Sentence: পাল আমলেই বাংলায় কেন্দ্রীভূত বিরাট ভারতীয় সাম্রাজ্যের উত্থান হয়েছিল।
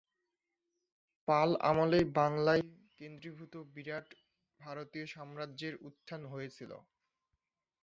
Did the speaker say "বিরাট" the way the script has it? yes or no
yes